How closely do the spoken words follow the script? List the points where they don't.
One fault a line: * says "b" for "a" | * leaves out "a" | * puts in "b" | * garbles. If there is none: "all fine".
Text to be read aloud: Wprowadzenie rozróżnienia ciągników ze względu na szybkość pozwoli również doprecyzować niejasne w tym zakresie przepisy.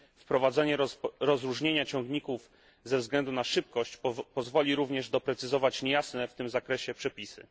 all fine